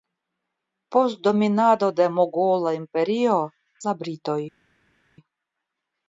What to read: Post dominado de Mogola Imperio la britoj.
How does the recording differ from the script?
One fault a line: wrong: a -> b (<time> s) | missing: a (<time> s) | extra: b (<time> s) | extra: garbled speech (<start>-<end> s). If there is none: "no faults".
no faults